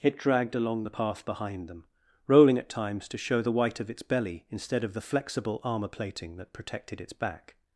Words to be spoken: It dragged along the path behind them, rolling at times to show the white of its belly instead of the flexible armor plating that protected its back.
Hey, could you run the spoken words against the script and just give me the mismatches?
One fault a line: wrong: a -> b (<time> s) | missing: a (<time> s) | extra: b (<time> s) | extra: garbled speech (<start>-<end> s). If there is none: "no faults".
no faults